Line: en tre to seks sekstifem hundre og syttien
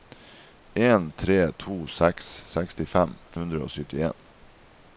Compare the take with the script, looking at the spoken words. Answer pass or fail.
pass